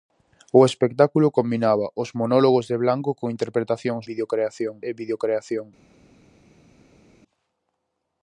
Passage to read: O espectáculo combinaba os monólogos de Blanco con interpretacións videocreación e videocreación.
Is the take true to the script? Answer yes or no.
yes